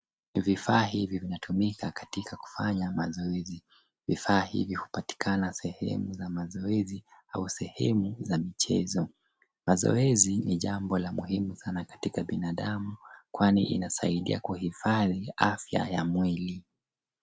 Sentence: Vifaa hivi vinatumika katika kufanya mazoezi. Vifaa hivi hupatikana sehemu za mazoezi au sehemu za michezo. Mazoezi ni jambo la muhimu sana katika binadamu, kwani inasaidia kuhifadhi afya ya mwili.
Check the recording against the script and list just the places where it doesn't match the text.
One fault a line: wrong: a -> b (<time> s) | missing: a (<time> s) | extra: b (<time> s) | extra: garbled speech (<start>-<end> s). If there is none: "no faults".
no faults